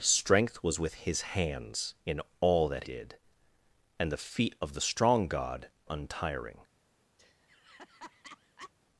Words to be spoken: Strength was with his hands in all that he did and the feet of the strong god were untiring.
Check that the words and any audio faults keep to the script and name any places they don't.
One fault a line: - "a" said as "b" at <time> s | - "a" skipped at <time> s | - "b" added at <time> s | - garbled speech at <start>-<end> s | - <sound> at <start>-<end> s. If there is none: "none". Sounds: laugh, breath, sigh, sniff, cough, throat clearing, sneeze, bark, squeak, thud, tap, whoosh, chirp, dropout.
- "he" skipped at 2.8 s
- "were" skipped at 5.7 s
- laugh at 7.2-8.7 s